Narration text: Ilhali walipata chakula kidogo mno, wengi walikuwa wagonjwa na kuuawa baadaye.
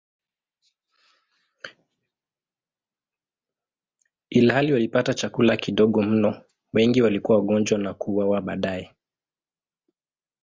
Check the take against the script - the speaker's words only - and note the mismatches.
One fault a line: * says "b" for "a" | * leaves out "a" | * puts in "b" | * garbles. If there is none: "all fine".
all fine